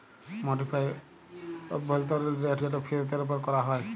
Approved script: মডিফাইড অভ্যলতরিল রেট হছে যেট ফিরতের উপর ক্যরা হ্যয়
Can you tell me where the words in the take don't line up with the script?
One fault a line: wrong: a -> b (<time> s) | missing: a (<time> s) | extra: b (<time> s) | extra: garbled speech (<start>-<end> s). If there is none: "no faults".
missing: হছে (2.6 s)